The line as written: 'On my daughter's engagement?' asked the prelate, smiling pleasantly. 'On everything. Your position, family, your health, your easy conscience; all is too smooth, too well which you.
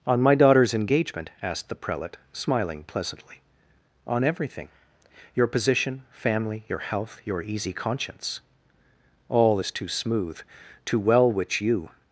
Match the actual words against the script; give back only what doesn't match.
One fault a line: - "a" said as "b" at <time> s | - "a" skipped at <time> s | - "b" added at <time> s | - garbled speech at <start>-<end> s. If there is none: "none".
none